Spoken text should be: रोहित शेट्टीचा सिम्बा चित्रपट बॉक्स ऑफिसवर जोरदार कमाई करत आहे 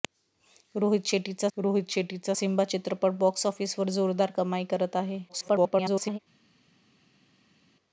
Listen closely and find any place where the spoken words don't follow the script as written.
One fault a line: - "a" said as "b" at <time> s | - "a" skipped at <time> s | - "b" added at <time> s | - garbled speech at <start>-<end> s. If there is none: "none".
- "रोहित शेट्टीचा" added at 1.6 s
- garbled speech at 5.3-6.2 s